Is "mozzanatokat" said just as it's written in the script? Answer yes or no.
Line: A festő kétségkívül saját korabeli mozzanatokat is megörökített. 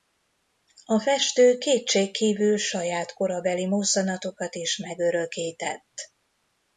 yes